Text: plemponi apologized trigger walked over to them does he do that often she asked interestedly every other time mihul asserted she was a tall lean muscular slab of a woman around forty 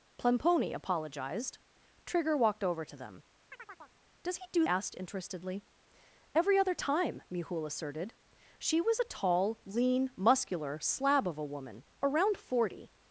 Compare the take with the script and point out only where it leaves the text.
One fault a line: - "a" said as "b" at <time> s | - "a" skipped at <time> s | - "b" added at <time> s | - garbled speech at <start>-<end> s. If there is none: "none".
- "that often she" skipped at 4.6 s